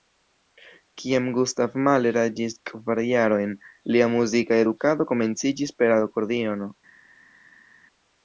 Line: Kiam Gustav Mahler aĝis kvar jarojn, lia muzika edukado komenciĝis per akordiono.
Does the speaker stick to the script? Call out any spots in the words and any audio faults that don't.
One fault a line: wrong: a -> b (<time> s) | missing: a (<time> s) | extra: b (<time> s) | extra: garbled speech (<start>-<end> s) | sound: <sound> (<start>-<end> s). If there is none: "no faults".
no faults